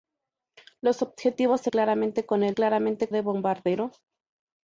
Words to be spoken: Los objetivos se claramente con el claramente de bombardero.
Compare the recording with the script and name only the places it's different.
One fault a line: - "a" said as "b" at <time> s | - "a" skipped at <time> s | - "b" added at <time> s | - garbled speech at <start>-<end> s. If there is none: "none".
none